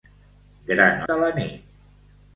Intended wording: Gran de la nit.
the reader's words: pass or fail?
pass